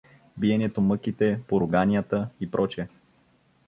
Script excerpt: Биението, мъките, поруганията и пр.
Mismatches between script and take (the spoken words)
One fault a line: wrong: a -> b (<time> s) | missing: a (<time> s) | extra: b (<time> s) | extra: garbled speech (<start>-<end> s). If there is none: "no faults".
no faults